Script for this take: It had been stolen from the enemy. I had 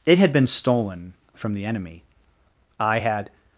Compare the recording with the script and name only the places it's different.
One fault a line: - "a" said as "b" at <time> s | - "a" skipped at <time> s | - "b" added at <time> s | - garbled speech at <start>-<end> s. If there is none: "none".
none